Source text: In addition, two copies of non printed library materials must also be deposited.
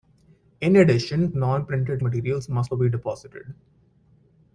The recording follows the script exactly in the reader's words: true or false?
false